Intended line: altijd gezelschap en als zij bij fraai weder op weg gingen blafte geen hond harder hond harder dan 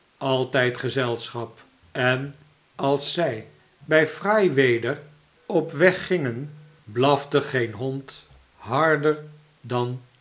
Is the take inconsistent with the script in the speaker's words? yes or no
yes